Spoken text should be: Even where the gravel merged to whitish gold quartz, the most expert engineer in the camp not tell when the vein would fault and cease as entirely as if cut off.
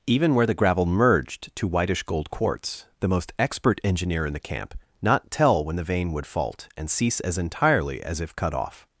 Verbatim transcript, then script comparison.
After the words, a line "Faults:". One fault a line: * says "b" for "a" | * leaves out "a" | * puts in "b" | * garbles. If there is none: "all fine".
Even where the gravel merged to whitish gold quartz, the most expert engineer in the camp not tell when the vein would fault and cease as entirely as if cut off.
Faults:
all fine